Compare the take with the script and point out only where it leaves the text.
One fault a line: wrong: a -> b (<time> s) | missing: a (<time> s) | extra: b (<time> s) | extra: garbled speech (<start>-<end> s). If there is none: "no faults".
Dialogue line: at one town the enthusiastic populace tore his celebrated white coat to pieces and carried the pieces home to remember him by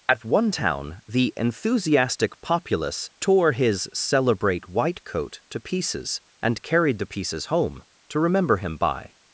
wrong: celebrated -> celebrate (3.9 s)